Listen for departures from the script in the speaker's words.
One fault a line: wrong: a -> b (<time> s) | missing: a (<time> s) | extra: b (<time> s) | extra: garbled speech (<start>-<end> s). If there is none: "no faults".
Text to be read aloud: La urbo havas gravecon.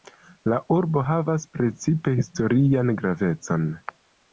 extra: precipe historian (1.6 s)